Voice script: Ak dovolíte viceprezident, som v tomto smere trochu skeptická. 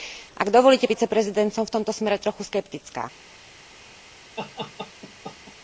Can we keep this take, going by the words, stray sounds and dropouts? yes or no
no